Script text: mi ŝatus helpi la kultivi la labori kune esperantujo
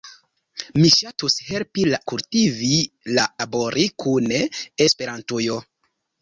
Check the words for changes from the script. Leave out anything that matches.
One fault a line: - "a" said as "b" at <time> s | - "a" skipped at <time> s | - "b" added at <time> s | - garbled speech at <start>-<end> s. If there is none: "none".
none